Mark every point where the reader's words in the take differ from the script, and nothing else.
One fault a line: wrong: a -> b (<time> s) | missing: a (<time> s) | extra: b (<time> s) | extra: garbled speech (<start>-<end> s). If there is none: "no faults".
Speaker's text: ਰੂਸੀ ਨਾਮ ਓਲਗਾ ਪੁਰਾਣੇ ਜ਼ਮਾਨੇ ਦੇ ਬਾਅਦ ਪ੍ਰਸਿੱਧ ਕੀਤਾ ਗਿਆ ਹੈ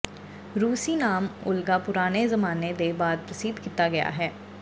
no faults